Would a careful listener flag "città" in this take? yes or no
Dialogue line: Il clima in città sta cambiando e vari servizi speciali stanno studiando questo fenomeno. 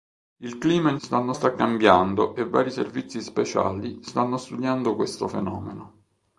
yes